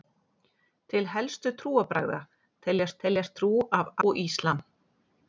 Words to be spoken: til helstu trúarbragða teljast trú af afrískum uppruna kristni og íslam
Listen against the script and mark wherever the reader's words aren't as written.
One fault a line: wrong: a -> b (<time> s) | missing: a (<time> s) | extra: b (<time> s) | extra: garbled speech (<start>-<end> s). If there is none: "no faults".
extra: teljast (3.0 s)
missing: afrískum uppruna kristni (3.9 s)